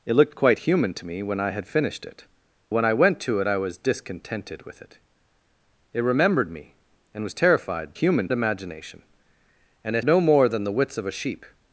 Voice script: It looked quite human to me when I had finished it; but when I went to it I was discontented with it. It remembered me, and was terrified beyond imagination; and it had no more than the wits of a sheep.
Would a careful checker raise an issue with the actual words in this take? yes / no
yes